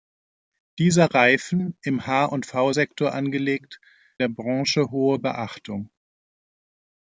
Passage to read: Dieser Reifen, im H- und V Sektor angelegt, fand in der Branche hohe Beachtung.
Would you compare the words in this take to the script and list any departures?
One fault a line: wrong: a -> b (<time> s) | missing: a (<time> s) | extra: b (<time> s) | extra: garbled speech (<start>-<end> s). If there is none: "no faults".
missing: fand in (3.8 s)